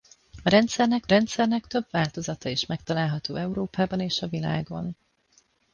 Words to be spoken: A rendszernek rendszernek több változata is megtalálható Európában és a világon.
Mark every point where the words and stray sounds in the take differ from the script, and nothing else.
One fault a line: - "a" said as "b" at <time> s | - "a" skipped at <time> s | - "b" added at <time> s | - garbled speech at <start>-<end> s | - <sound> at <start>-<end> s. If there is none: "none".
none